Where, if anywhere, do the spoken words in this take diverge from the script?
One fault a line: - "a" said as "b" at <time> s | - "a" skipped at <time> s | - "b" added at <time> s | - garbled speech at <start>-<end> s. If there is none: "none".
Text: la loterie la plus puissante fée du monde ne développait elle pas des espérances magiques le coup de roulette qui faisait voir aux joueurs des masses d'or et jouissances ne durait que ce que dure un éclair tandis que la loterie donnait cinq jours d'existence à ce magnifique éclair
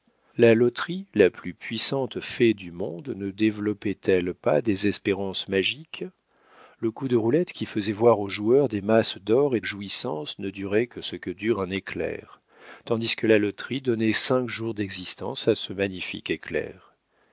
none